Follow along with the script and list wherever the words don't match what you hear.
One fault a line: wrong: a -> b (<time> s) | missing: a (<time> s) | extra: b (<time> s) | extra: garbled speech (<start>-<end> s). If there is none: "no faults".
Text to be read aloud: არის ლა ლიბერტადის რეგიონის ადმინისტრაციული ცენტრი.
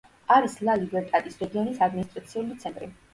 no faults